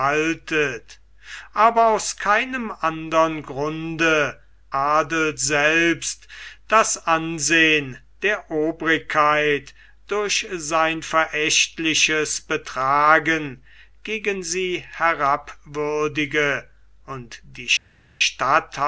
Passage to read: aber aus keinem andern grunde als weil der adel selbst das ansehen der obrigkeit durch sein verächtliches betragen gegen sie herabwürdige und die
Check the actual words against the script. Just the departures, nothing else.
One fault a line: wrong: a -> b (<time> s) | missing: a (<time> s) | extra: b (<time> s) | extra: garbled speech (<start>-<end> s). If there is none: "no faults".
missing: als weil der (4.4 s)